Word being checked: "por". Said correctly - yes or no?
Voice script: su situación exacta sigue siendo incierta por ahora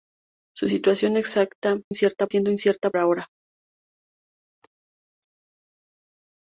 no